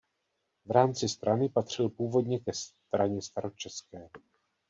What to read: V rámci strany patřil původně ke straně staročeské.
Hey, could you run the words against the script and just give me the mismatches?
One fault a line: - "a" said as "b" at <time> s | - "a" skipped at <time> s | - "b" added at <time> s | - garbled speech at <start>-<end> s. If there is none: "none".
none